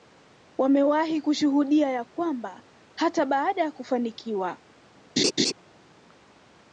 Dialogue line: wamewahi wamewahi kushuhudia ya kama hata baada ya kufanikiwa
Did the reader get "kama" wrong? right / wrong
wrong